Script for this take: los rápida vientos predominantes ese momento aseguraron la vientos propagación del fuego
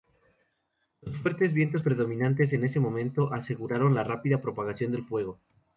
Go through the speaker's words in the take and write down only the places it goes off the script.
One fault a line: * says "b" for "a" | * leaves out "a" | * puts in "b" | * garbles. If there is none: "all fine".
* says "fuertes" for "rápida"
* puts in "en"
* says "rápida" for "vientos"